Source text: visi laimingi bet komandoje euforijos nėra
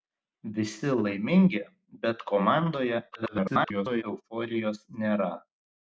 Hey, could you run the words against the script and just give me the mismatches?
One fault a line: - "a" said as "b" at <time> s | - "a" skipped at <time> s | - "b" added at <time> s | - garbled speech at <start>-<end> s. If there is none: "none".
- garbled speech at 3.1-4.0 s